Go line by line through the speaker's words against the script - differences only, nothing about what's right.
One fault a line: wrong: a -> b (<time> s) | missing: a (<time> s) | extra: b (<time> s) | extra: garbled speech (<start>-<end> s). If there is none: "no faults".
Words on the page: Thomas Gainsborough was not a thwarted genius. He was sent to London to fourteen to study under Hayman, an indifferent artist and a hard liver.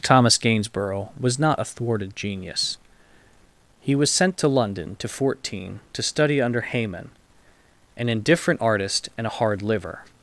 no faults